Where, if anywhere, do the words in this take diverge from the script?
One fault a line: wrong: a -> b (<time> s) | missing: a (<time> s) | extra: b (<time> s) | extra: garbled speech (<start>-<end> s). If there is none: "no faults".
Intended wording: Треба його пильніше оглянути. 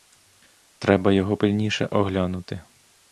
no faults